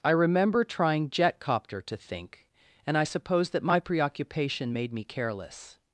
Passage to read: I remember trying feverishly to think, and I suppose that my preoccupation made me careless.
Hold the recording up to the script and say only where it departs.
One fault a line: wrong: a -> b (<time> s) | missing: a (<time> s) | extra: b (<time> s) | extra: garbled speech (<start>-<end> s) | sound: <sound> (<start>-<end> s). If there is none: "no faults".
wrong: feverishly -> jetcopter (1.1 s)